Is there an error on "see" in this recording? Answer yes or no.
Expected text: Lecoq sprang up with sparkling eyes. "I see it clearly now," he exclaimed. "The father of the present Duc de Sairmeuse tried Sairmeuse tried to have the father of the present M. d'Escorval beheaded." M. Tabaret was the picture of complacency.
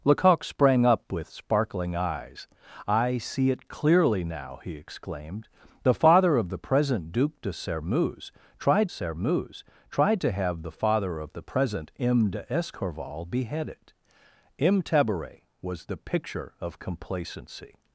no